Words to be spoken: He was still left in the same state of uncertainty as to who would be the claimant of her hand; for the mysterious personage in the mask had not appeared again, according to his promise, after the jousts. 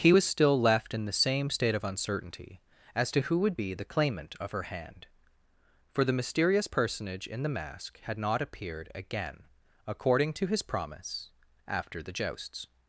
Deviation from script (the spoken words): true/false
false